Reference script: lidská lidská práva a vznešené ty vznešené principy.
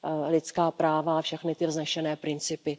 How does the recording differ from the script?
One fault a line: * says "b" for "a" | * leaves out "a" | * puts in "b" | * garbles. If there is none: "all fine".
* leaves out "lidská"
* says "všechny" for "vznešené"